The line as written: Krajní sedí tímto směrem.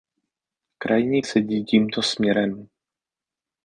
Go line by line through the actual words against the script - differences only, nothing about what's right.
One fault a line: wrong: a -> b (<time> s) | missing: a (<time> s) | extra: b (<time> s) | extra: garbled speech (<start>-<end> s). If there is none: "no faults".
no faults